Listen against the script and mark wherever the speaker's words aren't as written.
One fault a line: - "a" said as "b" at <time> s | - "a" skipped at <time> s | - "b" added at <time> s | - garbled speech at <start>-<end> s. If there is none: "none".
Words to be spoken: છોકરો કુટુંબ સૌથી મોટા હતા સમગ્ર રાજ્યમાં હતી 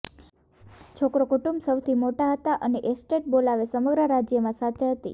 - "અને એસ્ટેટ બોલાવે" added at 2.6 s
- "સાથે" added at 4.6 s